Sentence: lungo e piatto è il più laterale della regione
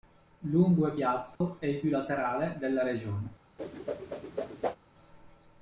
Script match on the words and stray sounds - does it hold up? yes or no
no